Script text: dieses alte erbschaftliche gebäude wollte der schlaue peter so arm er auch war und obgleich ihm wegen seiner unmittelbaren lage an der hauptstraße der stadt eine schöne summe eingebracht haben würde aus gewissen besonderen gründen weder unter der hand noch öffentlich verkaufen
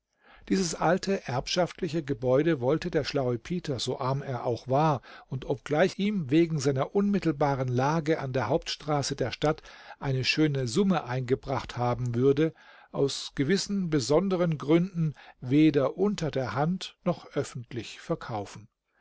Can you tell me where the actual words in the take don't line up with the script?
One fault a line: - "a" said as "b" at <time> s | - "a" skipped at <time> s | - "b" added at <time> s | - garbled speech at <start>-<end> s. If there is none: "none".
none